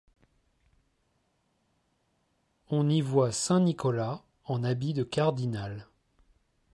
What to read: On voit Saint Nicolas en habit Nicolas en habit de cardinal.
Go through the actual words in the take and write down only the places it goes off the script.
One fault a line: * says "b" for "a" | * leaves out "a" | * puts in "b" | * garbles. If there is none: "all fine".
* puts in "y"
* leaves out "Nicolas en habit"